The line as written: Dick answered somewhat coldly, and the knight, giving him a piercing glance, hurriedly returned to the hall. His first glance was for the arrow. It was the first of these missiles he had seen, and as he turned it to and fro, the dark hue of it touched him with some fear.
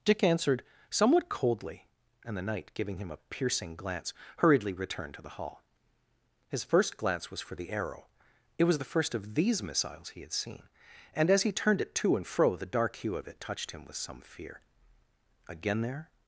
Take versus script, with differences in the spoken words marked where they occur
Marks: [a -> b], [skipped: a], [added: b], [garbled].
Dick answered somewhat coldly, and the knight, giving him a piercing glance, hurriedly returned to the hall. His first glance was for the arrow. It was the first of these missiles he had seen, and as he turned it to and fro, the dark hue of it touched him with some fear. [added: Again there]